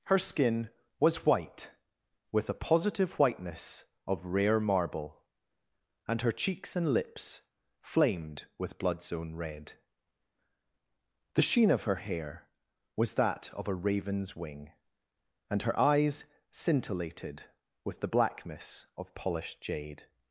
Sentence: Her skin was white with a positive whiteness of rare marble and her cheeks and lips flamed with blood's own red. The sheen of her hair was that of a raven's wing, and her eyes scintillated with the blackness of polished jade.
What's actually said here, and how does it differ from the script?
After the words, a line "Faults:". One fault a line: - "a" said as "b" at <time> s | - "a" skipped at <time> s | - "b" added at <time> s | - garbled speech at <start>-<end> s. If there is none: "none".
Her skin was white with a positive whiteness of rare marble and her cheeks and lips flamed with blood's own red. The sheen of her hair was that of a raven's wing, and her eyes scintillated with the blackness of polished jade.
Faults:
none